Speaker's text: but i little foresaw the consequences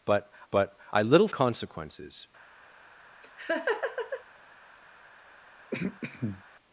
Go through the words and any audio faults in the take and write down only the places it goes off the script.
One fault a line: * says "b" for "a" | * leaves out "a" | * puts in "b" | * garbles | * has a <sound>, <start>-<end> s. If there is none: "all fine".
* puts in "but"
* leaves out "foresaw the"
* has a laugh, 3.2-4.2 s
* has a throat clearing, 5.7-6.4 s